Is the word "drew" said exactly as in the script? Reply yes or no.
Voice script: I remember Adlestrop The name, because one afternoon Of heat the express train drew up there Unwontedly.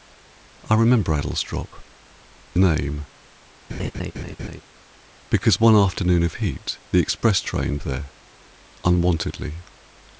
no